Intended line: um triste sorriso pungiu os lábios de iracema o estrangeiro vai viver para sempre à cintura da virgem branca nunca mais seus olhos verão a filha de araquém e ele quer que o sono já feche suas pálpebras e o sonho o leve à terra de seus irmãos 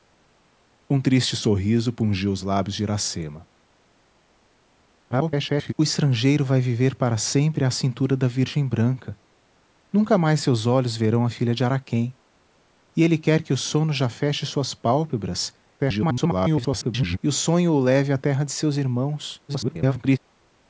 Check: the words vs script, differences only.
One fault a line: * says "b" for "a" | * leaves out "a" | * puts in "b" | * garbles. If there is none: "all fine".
* garbles
* garbles
* garbles